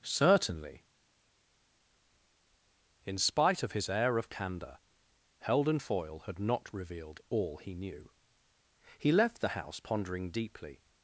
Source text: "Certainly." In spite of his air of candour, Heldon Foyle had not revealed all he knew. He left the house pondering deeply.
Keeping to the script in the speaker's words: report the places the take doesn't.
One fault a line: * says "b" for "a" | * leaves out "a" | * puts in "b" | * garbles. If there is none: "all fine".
all fine